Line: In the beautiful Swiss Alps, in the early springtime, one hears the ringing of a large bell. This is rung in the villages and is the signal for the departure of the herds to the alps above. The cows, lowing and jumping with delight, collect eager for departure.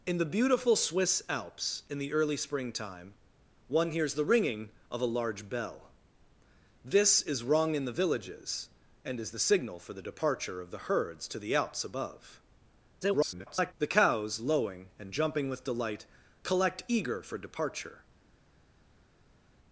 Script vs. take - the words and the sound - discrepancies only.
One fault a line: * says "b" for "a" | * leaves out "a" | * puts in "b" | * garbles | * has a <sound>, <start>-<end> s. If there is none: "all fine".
* garbles